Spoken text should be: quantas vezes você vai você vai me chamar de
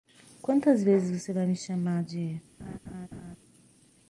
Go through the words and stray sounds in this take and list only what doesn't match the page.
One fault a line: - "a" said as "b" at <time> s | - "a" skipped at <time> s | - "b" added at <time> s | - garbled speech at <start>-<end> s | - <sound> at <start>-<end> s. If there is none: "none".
- "você vai" skipped at 1.5 s
- laugh at 2.6-3.4 s